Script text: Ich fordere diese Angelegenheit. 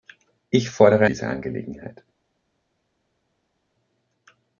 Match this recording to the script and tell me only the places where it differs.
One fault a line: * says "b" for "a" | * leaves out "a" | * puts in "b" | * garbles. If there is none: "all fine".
all fine